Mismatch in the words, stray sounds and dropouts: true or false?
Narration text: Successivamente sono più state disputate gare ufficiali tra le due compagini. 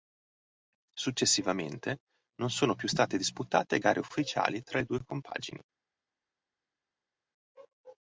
true